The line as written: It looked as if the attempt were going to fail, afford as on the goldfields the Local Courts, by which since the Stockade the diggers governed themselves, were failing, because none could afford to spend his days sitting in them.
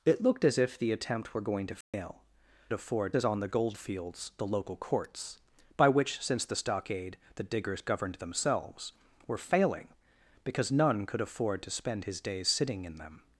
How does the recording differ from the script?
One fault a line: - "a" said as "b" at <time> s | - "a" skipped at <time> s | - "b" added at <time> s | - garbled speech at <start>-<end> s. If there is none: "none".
none